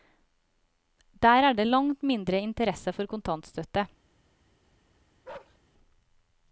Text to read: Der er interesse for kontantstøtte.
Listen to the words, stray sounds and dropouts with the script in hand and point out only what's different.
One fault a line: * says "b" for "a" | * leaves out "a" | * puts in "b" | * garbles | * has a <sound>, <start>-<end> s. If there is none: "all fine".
* puts in "det langt mindre"
* has a bark, 5.2-5.6 s